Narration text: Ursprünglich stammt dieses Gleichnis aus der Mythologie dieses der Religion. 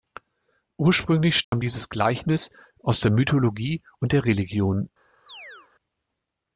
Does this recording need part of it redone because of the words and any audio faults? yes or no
yes